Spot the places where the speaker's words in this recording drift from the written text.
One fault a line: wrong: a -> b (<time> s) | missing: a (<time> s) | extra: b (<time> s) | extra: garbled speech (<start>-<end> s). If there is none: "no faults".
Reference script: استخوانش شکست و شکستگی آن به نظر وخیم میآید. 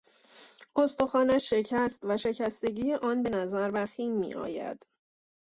no faults